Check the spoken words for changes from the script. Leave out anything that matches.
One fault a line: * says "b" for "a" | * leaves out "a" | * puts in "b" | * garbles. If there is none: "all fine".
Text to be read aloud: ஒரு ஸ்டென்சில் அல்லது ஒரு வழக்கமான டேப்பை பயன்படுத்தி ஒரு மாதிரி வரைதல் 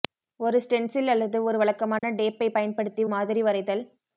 * leaves out "ஒரு"